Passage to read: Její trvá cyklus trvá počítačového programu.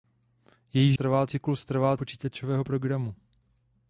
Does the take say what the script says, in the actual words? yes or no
yes